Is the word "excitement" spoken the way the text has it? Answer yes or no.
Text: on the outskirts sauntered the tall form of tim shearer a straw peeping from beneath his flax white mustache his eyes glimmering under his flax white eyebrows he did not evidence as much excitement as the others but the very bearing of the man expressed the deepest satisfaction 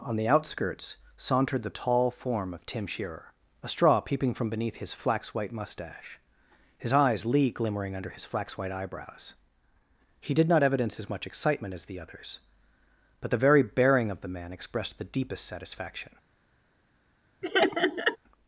yes